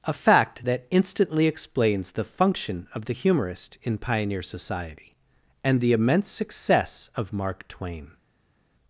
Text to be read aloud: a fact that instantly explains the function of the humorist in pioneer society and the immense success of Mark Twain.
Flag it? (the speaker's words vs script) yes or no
no